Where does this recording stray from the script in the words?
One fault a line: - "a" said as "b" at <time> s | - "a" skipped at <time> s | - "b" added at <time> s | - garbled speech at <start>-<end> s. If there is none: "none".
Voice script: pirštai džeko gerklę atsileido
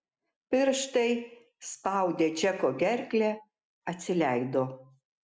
- "spaudę" added at 1.7 s